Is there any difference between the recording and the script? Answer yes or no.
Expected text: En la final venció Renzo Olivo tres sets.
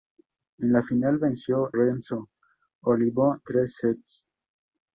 no